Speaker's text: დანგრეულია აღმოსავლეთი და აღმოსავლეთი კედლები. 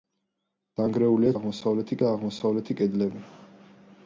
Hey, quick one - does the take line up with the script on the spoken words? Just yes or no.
yes